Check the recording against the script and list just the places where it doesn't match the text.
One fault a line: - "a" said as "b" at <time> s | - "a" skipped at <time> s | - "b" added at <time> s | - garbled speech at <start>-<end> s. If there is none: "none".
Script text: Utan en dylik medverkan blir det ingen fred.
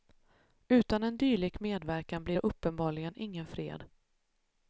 - "uppenbarligen" added at 2.4 s